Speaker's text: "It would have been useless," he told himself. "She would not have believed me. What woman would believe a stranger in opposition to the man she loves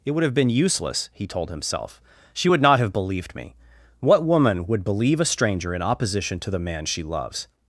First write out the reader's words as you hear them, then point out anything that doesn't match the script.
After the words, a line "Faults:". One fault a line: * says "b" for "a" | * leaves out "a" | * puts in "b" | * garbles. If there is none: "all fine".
"It would have been useless," he told himself. "She would not have believed me. What woman would believe a stranger in opposition to the man she loves
Faults:
all fine